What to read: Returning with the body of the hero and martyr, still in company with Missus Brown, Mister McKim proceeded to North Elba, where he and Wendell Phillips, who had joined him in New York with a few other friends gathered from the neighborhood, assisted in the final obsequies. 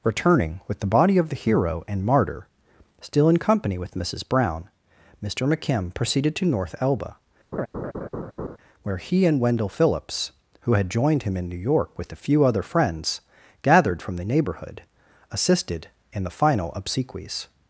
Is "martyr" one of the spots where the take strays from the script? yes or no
no